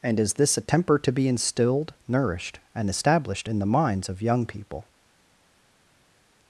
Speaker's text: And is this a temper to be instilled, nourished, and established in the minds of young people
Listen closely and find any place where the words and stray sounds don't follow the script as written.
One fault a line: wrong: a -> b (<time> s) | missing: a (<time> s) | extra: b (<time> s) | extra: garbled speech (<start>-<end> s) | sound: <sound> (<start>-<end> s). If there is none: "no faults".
no faults